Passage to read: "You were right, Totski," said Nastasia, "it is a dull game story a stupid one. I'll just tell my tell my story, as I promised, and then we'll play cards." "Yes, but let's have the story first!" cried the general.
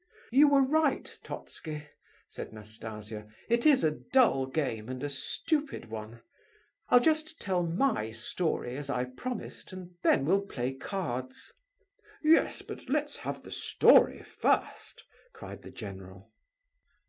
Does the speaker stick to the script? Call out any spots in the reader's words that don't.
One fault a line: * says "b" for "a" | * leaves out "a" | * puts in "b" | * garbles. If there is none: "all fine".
* says "and" for "story"
* leaves out "tell my"